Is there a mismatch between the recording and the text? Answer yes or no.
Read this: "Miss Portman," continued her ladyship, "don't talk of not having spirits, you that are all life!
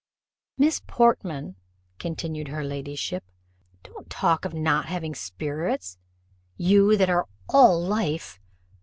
no